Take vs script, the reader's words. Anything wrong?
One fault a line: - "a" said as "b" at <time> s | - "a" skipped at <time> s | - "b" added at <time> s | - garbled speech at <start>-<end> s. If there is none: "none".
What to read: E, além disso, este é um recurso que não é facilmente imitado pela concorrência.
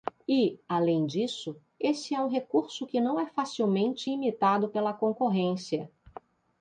- "este" said as "esse" at 1.8 s